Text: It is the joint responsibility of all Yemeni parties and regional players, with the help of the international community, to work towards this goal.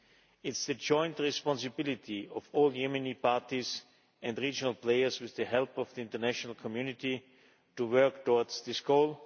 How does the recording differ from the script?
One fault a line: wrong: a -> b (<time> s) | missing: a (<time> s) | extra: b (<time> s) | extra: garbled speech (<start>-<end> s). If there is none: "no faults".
no faults